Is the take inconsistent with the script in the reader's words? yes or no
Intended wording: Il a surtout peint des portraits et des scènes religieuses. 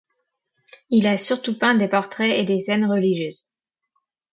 no